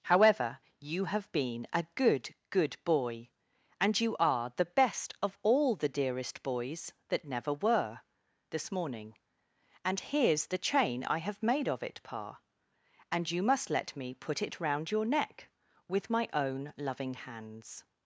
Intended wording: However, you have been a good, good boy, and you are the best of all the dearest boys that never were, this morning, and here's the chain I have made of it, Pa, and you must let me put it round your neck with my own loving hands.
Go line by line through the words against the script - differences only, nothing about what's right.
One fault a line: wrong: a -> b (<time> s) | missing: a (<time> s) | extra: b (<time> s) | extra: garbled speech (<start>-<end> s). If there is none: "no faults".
no faults